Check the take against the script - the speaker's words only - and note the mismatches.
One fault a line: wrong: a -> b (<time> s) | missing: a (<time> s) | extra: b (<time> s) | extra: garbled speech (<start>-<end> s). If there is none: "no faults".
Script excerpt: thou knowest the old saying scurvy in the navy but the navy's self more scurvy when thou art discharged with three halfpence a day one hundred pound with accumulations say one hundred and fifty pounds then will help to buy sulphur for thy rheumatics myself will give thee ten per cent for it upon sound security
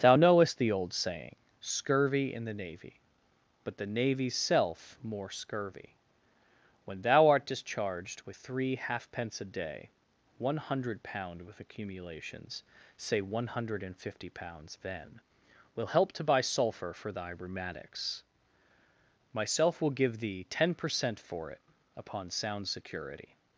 no faults